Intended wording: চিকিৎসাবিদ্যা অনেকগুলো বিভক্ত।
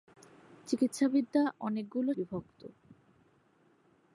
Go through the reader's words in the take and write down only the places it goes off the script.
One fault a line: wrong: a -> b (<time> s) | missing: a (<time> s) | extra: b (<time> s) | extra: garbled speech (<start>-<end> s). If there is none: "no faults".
no faults